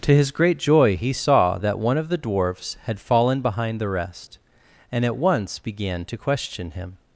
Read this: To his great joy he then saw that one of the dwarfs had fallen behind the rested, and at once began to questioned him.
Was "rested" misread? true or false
true